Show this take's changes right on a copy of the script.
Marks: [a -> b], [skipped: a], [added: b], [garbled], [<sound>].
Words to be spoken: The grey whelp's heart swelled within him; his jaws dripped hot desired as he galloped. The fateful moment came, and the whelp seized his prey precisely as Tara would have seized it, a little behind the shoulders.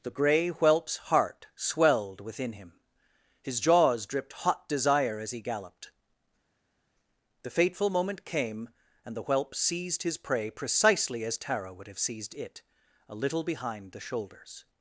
The grey whelp's heart swelled within him; his jaws dripped hot [desired -> desire] as he galloped. The fateful moment came, and the whelp seized his prey precisely as Tara would have seized it, a little behind the shoulders.